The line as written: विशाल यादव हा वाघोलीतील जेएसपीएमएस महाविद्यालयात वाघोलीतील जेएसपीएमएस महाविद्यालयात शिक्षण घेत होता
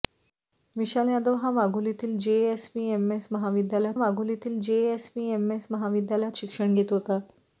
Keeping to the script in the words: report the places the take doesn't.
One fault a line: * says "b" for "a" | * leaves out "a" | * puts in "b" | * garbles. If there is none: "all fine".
all fine